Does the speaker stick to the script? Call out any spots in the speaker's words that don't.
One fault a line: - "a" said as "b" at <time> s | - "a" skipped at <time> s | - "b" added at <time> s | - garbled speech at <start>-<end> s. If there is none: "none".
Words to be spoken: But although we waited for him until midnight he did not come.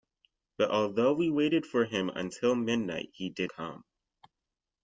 - "not" skipped at 3.5 s